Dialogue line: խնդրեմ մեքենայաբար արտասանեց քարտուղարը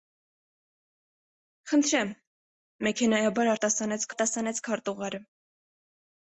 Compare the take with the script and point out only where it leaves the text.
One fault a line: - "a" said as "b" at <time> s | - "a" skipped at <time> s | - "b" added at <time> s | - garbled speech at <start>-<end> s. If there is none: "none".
- "արտասանեց" added at 4.1 s